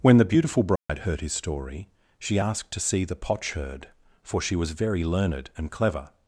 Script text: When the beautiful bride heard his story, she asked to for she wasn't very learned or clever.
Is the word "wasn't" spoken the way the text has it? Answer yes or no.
no